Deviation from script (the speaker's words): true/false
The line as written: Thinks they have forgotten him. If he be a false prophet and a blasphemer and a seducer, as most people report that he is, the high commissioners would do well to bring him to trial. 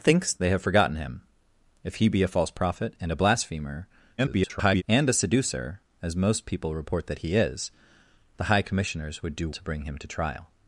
true